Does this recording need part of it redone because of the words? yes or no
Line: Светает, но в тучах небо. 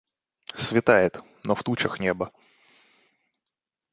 no